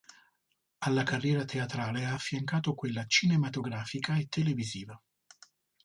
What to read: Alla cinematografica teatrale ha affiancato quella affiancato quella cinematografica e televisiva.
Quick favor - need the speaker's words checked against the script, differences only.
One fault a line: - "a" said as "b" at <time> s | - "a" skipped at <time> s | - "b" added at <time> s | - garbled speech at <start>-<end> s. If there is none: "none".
- "cinematografica" said as "carriera" at 1.0 s
- "affiancato quella" skipped at 3.0 s